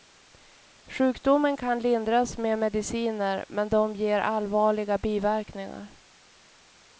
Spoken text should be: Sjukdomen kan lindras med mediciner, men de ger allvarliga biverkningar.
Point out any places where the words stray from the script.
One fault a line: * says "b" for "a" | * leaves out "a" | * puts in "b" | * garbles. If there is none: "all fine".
all fine